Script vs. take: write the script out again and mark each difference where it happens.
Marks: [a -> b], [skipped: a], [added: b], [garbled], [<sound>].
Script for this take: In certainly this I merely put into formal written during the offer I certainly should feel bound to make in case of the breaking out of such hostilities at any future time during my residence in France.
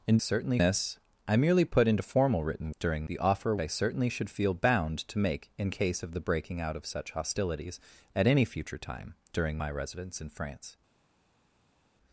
In certainly this I merely put into formal written during the offer I certainly should feel bound to make in case of the breaking out of such hostilities at any future time during my residence in France.